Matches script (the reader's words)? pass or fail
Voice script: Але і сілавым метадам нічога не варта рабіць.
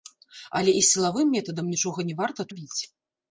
pass